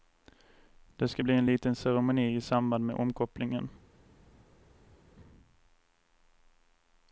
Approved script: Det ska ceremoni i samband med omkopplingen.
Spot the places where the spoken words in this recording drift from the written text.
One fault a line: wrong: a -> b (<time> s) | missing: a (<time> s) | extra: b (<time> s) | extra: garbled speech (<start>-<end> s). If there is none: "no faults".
extra: bli en liten (1.2 s)